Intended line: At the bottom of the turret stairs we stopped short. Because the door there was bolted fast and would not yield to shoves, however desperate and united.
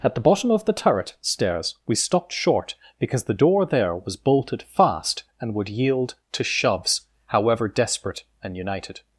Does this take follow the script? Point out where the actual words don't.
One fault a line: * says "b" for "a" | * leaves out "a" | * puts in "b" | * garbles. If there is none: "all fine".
* leaves out "not"